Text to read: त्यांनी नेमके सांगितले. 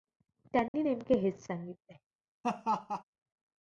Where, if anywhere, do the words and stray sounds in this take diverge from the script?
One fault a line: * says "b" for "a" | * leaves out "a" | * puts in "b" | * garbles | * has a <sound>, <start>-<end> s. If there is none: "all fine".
* has a dropout, 0.7-0.7 s
* puts in "हेच"
* has a laugh, 2.4-3.0 s